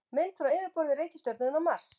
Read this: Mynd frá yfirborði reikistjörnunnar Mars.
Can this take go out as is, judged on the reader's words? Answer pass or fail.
pass